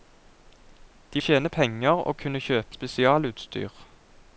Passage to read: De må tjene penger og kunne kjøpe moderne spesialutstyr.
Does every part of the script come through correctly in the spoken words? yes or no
no